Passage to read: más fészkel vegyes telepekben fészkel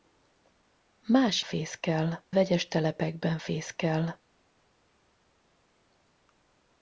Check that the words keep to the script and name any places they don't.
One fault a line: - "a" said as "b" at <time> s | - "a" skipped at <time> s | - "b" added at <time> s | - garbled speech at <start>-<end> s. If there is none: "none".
none